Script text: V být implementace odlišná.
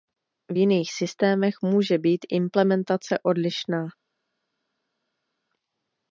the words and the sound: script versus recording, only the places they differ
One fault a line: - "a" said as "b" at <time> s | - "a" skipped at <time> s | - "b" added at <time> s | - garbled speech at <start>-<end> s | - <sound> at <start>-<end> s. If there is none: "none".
- "jiných systémech může" added at 0.5 s